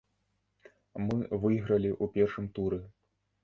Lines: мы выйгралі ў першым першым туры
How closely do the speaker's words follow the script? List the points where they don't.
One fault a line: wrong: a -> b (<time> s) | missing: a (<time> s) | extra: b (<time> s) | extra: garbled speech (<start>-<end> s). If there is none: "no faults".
missing: першым (2.5 s)